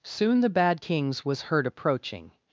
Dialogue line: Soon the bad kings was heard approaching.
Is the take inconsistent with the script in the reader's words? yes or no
no